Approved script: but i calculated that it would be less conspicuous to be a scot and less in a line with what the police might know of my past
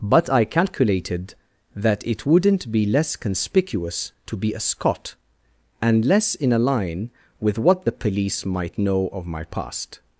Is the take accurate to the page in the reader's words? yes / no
no